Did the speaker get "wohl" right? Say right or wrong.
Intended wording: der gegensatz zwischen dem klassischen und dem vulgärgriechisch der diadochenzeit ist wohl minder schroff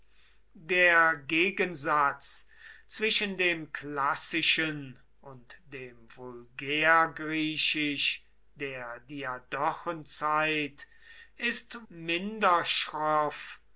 wrong